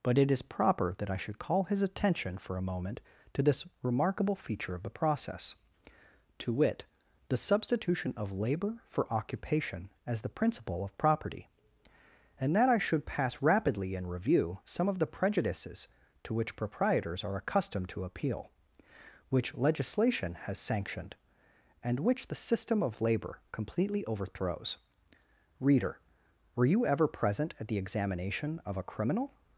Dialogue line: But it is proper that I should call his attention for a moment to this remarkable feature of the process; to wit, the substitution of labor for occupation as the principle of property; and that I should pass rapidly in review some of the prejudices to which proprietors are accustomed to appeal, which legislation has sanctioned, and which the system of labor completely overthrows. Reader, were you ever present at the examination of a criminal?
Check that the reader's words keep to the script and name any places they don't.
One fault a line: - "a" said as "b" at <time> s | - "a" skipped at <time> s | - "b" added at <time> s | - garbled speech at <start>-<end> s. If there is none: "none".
none